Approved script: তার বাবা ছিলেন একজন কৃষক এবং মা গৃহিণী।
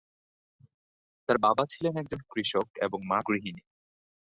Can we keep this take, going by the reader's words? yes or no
yes